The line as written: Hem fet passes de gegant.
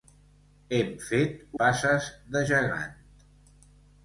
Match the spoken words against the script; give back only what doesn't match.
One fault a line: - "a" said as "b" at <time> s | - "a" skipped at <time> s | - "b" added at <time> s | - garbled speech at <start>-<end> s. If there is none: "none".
none